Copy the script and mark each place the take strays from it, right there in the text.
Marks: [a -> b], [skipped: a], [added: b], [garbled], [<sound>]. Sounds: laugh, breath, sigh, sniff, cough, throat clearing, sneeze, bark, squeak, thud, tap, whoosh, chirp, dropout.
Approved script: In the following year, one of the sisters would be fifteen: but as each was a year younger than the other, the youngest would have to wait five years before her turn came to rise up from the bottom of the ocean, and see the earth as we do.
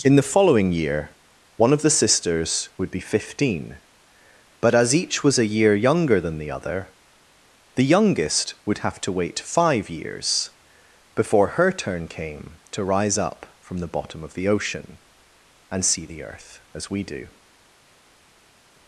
In the following year, one of the sisters would be fifteen: but as each was a year younger than the other, the youngest would have to wait five years before her turn came to rise up from the bottom of the ocean, and see the earth as we do.